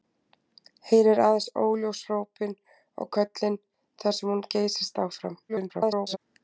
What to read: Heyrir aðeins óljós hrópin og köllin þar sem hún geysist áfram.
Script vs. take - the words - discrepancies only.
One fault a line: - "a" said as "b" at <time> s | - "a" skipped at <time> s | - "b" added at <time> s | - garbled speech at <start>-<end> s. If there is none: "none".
- garbled speech at 5.5-6.2 s